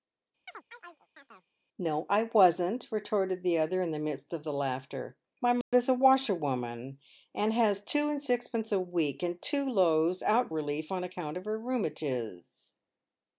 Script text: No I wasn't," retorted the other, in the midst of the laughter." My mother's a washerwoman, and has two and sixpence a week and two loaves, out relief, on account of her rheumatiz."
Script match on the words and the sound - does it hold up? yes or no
no